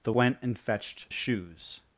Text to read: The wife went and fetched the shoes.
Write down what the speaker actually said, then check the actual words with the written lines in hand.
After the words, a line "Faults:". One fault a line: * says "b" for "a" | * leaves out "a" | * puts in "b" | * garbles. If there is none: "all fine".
The went and fetched shoes.
Faults:
* leaves out "wife"
* leaves out "the"